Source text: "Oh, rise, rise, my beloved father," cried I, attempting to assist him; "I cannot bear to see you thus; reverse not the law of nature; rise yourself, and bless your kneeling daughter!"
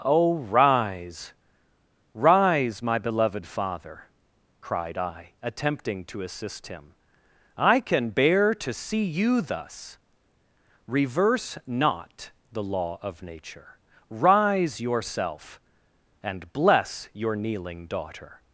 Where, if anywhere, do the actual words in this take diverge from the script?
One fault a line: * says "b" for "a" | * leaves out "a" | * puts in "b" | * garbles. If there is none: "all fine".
* says "can" for "cannot"